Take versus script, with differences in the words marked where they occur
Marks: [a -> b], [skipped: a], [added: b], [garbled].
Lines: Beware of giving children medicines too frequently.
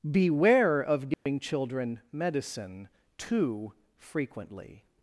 Beware of giving children [medicines -> medicine] too frequently.